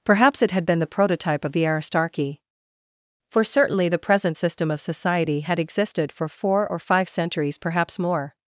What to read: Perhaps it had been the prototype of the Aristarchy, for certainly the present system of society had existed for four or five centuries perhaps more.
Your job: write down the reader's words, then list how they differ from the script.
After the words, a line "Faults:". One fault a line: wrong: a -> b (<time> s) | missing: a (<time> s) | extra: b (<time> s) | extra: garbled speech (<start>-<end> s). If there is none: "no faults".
Perhaps it had been the prototype of the Aristarchy, for certainly the present system of society had existed for four or five centuries perhaps more.
Faults:
no faults